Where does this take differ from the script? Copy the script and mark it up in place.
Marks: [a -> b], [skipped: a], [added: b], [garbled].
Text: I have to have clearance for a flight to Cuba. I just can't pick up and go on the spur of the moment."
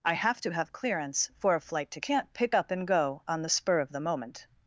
I have to have clearance for a flight to [skipped: Cuba. I just] can't pick up and go on the spur of the moment."